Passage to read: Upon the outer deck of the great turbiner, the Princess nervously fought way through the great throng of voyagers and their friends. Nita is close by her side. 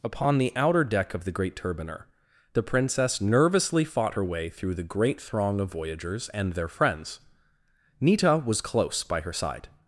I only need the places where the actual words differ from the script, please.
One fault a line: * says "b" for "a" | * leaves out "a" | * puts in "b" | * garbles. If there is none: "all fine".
* puts in "her"
* says "was" for "is"